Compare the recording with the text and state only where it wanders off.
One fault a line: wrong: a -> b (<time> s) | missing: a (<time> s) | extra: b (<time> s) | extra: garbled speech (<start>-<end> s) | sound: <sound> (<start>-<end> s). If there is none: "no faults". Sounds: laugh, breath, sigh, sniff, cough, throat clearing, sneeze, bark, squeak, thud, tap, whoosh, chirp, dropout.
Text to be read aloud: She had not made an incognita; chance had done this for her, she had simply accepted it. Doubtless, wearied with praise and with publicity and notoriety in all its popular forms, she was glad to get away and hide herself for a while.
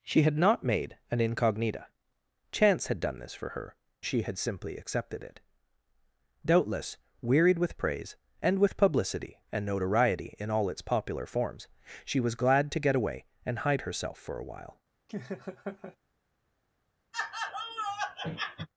sound: laugh (15.1-16.0 s)
sound: laugh (17.1-18.7 s)